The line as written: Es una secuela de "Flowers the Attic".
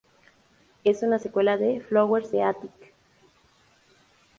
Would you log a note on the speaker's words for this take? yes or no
no